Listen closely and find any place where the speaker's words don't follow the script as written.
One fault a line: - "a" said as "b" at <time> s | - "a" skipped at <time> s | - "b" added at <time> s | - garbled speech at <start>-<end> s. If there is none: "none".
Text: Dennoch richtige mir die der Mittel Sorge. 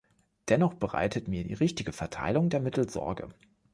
- "richtige" said as "bereitet" at 0.7 s
- "richtige Verteilung" added at 1.5 s